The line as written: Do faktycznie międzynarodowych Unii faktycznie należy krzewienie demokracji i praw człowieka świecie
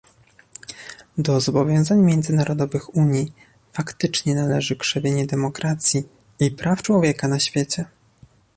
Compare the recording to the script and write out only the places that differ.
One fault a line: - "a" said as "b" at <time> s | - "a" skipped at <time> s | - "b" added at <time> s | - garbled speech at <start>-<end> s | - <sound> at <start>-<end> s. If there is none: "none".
- "faktycznie" said as "zobowiązań" at 1.4 s
- "na" added at 7.3 s